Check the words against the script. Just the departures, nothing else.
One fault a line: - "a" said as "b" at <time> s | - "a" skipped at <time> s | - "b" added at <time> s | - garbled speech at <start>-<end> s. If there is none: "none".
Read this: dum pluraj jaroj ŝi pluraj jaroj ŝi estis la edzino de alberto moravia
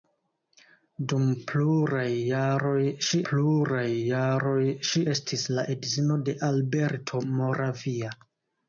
none